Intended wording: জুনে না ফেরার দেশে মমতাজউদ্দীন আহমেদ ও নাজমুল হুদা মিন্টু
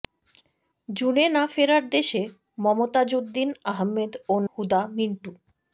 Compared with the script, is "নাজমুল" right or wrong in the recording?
wrong